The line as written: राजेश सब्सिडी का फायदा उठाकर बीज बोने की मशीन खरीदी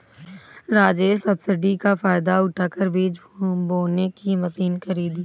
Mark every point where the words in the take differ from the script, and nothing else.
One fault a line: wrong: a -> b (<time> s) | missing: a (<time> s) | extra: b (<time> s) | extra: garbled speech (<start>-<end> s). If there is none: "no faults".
no faults